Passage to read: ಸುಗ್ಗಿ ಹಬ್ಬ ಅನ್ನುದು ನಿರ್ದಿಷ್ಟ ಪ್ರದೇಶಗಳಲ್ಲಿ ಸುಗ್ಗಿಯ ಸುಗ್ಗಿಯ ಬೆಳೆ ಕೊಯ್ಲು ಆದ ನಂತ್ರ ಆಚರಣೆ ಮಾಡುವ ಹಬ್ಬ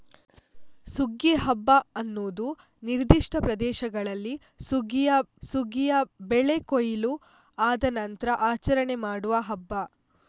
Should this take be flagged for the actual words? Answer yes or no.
no